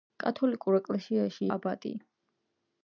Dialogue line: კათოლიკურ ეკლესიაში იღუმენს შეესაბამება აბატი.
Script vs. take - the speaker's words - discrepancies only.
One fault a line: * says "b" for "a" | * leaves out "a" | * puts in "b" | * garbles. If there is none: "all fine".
* leaves out "იღუმენს შეესაბამება"